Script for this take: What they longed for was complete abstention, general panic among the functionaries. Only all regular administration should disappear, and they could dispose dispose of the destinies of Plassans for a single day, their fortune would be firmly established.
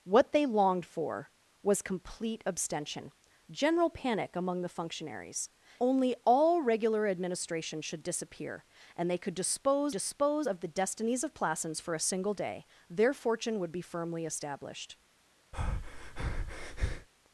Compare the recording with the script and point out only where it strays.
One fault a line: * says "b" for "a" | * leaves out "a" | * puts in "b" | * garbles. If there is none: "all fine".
all fine